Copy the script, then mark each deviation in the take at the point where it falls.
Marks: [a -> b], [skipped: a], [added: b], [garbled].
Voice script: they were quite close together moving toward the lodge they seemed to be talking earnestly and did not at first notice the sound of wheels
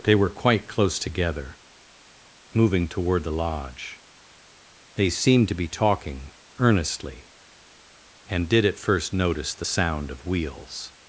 they were quite close together moving toward the lodge they seemed to be talking earnestly and did [skipped: not] at first notice the sound of wheels